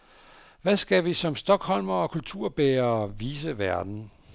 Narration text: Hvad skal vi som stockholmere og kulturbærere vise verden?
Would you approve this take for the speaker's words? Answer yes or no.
yes